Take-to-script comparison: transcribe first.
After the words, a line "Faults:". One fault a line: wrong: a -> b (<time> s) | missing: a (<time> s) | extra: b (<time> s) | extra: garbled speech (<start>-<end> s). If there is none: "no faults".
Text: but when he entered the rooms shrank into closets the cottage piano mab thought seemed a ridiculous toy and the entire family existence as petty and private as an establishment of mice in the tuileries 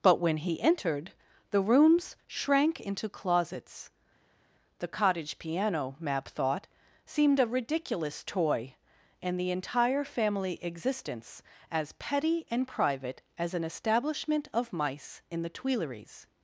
but when he entered the rooms shrank into closets the cottage piano mab thought seemed a ridiculous toy and the entire family existence as petty and private as an establishment of mice in the tuileries
Faults:
no faults